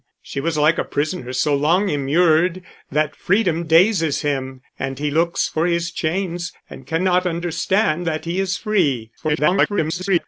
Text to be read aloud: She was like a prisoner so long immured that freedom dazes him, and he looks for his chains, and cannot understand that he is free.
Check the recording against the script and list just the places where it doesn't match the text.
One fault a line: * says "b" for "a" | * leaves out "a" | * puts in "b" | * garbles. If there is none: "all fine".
* garbles